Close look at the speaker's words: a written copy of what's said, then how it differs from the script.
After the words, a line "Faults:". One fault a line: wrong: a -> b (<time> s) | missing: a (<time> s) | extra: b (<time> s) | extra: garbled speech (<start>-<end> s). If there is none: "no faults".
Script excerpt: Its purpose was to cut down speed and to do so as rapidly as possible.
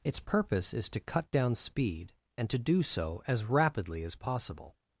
Its purpose is to cut down speed and to do so as rapidly as possible.
Faults:
wrong: was -> is (0.7 s)